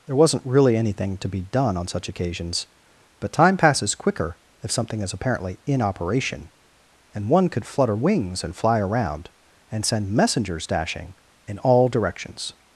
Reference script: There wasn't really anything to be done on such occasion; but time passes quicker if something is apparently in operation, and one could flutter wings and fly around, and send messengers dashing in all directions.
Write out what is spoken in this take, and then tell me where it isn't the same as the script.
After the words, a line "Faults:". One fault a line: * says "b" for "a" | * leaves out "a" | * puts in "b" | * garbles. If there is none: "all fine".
There wasn't really anything to be done on such occasions; but time passes quicker if something is apparently in operation, and one could flutter wings and fly around, and send messengers dashing in all directions.
Faults:
* says "occasions" for "occasion"